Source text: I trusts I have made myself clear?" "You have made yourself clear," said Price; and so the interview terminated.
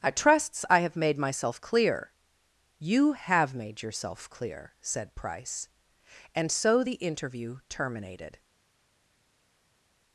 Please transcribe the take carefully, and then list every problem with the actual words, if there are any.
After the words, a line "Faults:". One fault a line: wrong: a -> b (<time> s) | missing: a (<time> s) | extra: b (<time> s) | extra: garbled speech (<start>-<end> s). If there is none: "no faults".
I trusts I have made myself clear?" "You have made yourself clear," said Price; and so the interview terminated.
Faults:
no faults